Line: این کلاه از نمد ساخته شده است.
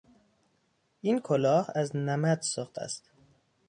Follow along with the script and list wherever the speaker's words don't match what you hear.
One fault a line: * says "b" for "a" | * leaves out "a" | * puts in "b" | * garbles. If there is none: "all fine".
* leaves out "شده"